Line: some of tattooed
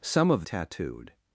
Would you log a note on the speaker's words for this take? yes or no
no